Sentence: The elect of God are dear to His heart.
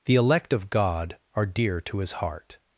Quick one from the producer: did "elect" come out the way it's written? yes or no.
yes